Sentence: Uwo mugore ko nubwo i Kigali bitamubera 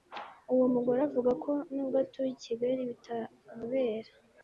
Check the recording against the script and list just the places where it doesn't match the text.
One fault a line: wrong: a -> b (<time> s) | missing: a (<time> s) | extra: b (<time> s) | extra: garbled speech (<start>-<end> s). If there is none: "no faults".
extra: avuga (1.1 s)
extra: atuye (2.0 s)